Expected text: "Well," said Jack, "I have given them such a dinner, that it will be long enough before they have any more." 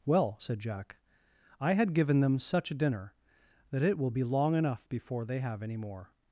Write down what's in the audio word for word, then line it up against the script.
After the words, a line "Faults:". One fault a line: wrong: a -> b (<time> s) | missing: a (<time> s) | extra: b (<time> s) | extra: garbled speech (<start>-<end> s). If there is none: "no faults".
"Well," said Jack, "I had given them such a dinner, that it will be long enough before they have any more."
Faults:
wrong: have -> had (1.7 s)